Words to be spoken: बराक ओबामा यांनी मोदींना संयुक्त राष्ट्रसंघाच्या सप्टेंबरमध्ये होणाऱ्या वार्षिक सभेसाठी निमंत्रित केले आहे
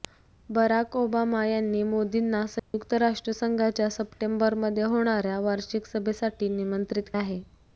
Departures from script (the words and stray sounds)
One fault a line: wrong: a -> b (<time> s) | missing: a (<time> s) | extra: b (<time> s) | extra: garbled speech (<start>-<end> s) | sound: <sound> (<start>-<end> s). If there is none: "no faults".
sound: dropout (2.6-2.7 s)
missing: केले (7.2 s)